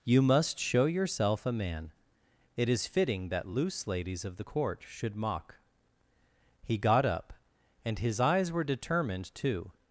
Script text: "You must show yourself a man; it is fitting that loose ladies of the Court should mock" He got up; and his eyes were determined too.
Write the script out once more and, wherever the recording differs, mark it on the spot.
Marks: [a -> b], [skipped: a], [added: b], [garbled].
"You must show yourself a man; it is fitting that loose ladies of the Court should mock" He got up; and his eyes were determined too.